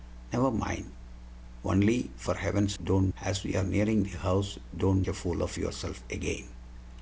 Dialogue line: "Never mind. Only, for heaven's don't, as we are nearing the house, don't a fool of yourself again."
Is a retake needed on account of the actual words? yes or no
no